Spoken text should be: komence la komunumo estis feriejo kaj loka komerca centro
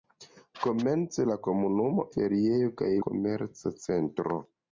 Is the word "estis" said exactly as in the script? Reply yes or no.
no